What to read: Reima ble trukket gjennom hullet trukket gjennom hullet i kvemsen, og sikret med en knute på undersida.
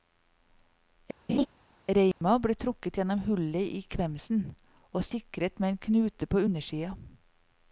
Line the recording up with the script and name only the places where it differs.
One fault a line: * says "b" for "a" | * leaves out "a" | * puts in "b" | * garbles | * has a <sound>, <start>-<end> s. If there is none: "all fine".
* has a laugh, 1.3-1.5 s
* has a dropout, 2.1-2.2 s
* leaves out "trukket gjennom hullet"